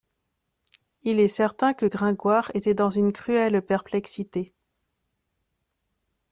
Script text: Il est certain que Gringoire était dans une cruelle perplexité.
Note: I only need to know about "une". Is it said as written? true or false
true